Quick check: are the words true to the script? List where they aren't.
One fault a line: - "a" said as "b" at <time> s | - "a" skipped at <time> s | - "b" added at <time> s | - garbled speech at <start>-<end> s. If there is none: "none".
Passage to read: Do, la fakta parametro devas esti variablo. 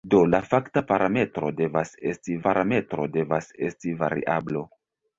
- "parametro devas esti" added at 2.5 s